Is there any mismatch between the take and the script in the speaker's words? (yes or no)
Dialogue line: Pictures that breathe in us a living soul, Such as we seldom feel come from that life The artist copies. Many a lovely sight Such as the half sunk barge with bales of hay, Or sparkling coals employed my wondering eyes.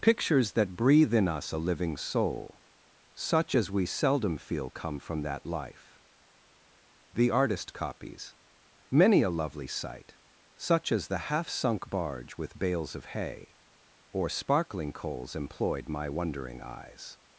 no